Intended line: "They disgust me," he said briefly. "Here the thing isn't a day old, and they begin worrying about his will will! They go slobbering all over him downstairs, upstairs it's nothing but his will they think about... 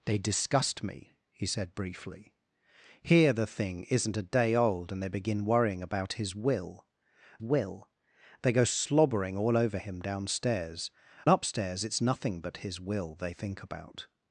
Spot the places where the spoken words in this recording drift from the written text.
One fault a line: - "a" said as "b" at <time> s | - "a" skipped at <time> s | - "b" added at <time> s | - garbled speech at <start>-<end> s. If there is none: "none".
none